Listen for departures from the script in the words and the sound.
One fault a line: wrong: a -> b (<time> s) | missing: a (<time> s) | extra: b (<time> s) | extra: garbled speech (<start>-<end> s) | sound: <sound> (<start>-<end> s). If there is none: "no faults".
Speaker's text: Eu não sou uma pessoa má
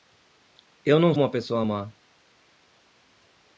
missing: sou (1.1 s)